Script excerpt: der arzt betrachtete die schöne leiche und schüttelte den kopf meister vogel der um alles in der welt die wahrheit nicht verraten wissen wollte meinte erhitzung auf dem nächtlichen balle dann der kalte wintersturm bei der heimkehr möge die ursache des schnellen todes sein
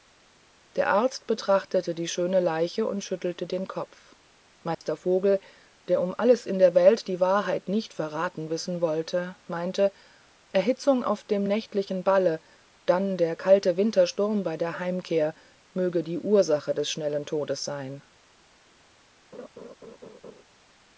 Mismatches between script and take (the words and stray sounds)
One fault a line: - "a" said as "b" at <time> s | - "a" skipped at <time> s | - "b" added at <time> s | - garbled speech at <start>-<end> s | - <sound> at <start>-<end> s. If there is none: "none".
- dropout at 4.7-4.8 s
- laugh at 19.3-20.4 s